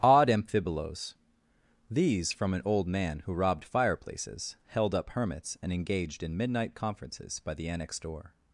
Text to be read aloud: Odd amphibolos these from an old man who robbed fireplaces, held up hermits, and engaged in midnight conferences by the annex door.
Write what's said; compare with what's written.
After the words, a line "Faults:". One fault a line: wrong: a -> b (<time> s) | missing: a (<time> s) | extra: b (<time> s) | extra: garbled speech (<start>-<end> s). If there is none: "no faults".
Odd amphibolos these from an old man who robbed fireplaces, held up hermits, and engaged in midnight conferences by the annex door.
Faults:
no faults